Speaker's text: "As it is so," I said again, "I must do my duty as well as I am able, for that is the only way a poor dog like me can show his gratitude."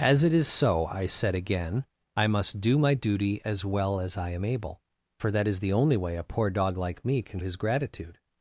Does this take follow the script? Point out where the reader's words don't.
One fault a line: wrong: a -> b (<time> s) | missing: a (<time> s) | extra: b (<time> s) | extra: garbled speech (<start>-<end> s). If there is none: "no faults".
missing: show (7.4 s)